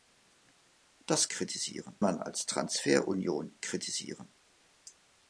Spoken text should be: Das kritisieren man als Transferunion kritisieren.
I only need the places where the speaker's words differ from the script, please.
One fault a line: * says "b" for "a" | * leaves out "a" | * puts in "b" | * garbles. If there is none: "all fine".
all fine